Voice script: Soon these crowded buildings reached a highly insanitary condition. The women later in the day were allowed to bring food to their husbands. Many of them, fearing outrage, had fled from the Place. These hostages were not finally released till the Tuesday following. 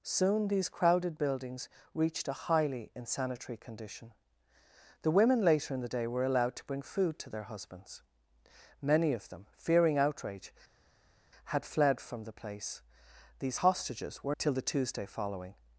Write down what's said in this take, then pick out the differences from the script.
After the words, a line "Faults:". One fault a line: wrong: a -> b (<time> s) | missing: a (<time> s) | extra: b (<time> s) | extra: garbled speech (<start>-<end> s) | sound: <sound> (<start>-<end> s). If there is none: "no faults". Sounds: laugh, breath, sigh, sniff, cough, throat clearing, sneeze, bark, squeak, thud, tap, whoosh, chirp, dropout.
Soon these crowded buildings reached a highly insanitary condition. The women later in the day were allowed to bring food to their husbands. Many of them, fearing outrage, had fled from the Place. These hostages were till the Tuesday following.
Faults:
missing: not finally released (14.3 s)